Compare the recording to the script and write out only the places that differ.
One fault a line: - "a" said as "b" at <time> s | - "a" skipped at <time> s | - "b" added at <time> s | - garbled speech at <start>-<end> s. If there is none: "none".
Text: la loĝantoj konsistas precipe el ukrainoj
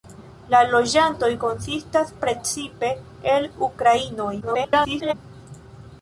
- garbled speech at 4.4-5.1 s